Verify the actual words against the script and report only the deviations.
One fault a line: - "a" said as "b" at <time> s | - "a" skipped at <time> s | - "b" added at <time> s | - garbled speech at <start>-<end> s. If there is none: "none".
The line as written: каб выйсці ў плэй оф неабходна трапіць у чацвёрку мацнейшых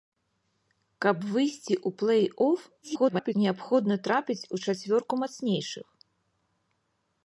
- garbled speech at 2.8-3.4 s